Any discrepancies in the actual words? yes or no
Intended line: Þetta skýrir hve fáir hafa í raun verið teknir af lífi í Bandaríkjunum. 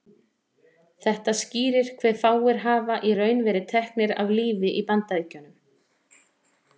no